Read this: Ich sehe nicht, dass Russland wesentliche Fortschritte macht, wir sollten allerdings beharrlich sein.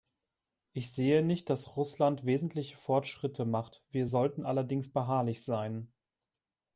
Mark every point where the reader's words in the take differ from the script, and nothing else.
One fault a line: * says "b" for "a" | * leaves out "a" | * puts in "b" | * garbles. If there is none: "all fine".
all fine